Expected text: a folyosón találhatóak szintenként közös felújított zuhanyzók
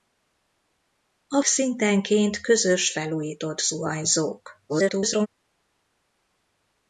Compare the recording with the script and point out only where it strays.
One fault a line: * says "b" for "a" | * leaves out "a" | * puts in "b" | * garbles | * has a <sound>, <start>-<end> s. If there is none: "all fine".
* leaves out "folyosón találhatóak"
* garbles